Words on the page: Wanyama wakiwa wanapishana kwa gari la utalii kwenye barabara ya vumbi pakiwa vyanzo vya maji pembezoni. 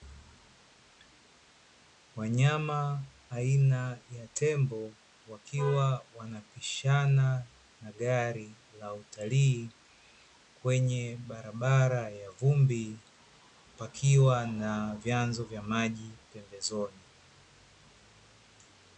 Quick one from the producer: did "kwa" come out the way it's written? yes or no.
no